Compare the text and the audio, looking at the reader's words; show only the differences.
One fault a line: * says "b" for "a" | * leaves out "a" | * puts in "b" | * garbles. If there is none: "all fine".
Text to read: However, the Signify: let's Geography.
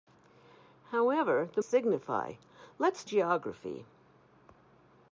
all fine